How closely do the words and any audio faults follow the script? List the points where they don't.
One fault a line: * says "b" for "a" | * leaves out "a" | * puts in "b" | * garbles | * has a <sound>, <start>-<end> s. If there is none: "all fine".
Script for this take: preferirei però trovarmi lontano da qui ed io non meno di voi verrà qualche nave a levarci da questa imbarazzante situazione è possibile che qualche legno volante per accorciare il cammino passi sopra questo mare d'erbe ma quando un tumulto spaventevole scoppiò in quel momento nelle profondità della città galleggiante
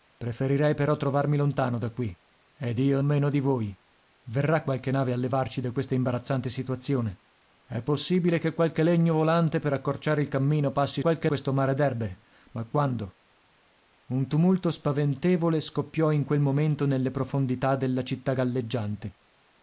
* leaves out "non"
* says "qualche" for "sopra"